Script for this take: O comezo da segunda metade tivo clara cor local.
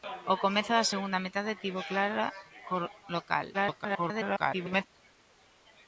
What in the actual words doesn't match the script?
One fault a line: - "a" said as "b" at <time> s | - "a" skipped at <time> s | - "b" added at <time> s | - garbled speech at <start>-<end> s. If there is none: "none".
- garbled speech at 3.5-4.8 s